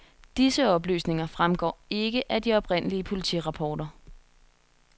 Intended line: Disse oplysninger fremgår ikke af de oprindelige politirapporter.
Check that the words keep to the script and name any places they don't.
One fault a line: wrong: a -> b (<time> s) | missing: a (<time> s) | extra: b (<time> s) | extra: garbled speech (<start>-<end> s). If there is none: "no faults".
no faults